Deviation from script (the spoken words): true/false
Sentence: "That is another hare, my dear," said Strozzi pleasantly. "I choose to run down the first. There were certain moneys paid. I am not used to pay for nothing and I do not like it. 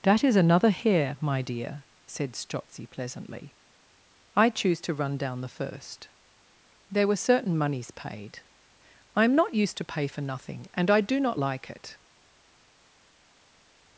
false